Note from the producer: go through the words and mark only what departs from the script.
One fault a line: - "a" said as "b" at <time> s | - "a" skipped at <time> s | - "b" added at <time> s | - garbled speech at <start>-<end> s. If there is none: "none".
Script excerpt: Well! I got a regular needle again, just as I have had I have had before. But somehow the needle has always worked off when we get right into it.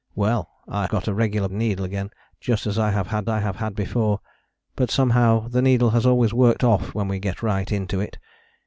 none